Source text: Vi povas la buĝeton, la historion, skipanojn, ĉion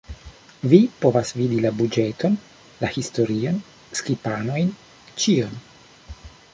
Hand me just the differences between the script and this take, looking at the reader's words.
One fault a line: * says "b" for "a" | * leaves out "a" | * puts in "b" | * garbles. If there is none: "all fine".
* puts in "vidi"